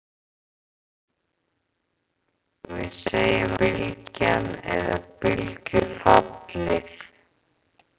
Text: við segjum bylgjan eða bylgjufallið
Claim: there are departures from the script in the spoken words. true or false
false